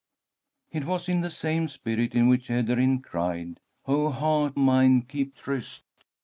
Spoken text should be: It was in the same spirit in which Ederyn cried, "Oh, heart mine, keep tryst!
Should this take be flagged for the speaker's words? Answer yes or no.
no